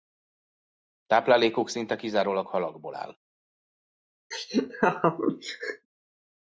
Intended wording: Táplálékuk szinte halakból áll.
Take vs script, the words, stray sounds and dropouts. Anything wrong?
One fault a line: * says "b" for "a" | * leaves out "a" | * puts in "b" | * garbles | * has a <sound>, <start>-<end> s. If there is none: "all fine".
* puts in "kizárólag"
* has a laugh, 4.3-5.9 s